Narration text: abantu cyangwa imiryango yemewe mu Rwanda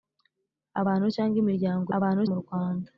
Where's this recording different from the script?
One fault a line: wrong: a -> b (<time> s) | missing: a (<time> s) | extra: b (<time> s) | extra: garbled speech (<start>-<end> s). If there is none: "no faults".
wrong: yemewe -> abantu (2.0 s)